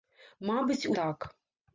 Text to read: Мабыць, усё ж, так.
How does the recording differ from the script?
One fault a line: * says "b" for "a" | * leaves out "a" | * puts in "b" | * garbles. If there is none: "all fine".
* leaves out "усё ж"